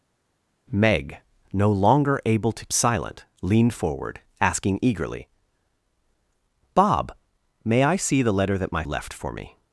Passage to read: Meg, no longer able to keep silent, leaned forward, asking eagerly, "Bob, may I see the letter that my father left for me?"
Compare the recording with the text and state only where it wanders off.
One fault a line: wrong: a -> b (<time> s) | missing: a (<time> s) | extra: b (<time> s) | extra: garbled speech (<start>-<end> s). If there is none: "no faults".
missing: keep (2.7 s)
missing: father (8.8 s)